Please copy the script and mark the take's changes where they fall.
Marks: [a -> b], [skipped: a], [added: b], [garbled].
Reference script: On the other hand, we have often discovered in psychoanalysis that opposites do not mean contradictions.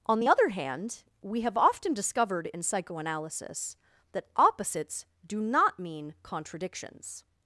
On the other hand, we have often discovered in psychoanalysis that opposites do not mean contradictions.